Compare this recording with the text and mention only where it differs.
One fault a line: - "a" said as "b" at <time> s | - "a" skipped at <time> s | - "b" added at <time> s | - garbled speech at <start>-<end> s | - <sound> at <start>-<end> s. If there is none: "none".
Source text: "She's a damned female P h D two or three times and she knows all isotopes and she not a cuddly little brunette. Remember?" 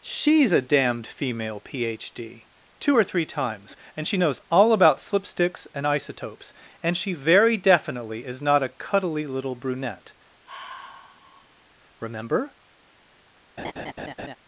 - "about slipsticks and" added at 4.7 s
- "very definitely is" added at 7.1 s
- sigh at 10.4-11.7 s
- laugh at 13.6-14.4 s